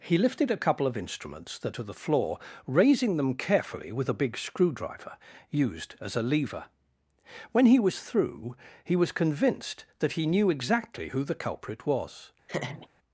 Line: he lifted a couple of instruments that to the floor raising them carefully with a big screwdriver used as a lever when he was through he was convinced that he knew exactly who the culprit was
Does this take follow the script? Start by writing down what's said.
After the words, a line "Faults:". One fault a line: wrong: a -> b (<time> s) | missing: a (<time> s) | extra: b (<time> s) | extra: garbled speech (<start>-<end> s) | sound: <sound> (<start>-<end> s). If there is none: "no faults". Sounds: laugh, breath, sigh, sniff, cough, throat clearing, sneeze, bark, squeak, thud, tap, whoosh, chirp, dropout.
he lifted a couple of instruments that to the floor raising them carefully with a big screwdriver used as a lever when he was through he was convinced that he knew exactly who the culprit was
Faults:
sound: laugh (12.5-12.9 s)